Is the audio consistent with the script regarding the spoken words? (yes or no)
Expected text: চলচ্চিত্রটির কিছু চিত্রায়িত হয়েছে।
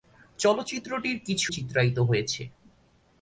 yes